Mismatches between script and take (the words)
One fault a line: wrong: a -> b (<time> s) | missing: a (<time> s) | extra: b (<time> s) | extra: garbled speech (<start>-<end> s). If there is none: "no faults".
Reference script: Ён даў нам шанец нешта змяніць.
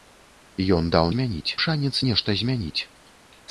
wrong: нам -> змяніць (1.1 s)